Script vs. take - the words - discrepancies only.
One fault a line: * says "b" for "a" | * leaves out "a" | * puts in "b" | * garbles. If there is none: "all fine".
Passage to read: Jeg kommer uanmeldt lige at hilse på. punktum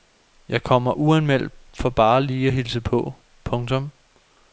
* puts in "for bare"